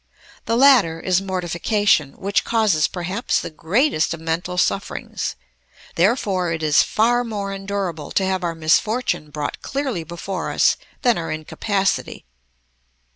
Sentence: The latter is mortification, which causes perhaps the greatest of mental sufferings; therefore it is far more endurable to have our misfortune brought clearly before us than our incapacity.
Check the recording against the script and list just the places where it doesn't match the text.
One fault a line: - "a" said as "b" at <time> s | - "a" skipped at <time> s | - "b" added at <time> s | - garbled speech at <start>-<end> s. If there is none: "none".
none